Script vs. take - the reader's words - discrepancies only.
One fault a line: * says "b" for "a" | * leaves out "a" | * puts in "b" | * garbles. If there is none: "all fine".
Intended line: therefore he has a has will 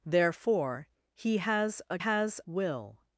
all fine